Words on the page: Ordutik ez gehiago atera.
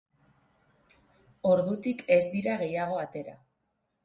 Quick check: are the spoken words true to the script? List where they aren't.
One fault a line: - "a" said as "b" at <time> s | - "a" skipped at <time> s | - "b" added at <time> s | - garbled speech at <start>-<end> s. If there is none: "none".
- "dira" added at 2.4 s